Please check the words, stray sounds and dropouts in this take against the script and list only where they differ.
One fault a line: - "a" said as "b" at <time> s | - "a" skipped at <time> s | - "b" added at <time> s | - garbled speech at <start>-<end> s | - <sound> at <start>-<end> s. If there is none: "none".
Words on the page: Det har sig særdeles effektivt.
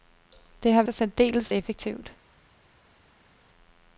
none